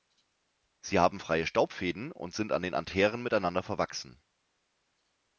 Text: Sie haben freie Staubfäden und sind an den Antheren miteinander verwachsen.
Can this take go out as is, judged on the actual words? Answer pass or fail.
pass